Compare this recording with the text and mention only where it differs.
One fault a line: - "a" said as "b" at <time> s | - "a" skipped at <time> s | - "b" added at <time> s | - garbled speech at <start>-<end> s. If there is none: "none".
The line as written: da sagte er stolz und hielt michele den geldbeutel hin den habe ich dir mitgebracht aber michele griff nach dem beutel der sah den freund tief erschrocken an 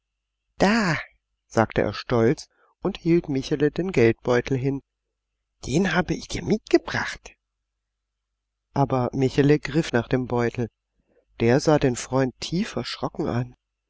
none